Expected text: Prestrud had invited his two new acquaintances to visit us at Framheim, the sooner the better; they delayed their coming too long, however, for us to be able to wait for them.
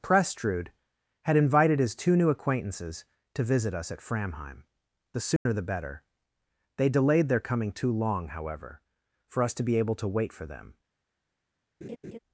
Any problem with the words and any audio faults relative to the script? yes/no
yes